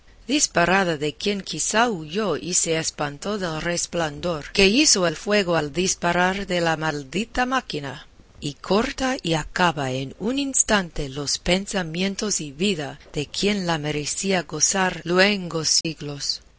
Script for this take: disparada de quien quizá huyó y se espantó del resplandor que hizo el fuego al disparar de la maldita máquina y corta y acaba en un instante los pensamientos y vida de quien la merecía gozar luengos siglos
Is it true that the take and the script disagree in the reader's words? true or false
false